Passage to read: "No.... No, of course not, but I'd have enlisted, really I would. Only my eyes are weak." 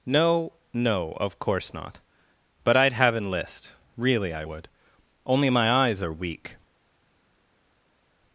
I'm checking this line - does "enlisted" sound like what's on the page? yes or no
no